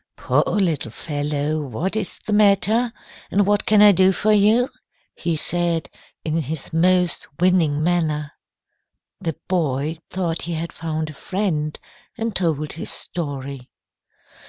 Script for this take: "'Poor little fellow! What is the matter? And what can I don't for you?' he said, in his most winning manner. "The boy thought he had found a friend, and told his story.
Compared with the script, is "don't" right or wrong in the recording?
wrong